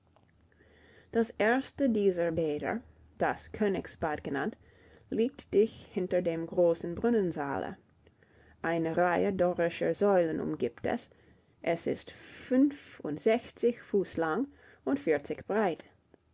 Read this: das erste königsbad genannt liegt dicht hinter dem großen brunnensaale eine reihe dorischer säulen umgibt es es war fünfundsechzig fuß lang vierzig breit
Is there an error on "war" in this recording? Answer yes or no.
yes